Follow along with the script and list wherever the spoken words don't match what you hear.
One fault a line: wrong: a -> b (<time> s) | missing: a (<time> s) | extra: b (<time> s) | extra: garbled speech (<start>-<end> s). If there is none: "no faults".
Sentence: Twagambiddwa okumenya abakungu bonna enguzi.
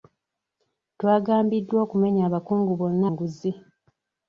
no faults